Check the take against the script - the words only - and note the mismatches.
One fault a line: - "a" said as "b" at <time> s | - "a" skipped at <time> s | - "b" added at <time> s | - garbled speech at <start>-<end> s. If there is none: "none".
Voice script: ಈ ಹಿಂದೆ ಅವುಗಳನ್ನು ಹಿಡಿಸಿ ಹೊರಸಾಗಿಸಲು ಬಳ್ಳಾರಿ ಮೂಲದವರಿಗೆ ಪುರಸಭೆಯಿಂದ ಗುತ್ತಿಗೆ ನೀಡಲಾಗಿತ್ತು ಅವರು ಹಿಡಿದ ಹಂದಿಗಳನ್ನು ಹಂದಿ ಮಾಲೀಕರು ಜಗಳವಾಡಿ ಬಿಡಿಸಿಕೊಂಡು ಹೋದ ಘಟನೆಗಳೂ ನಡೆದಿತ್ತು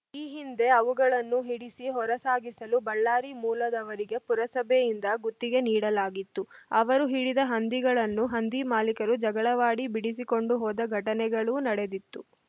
none